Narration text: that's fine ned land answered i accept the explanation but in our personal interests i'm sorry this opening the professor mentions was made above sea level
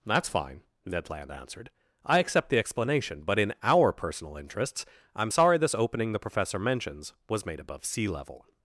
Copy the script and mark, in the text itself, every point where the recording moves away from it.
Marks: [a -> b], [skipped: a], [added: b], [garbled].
that's fine ned land answered i accept the explanation but in our personal interests i'm sorry this opening the professor mentions was made above sea level